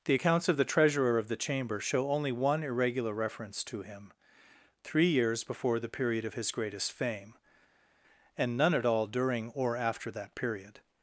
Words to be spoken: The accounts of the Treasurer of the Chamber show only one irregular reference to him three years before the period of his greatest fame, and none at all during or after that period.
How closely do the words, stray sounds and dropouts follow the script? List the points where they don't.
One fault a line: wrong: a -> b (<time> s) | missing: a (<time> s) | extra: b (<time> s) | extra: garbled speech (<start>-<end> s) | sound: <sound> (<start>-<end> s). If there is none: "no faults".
no faults